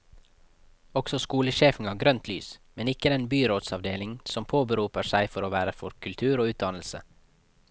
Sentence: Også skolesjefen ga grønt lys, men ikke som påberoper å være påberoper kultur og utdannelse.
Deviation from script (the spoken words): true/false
true